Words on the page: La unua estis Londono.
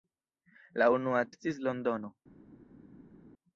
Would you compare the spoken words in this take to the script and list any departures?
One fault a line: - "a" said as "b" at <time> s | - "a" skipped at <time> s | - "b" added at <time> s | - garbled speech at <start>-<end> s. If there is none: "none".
none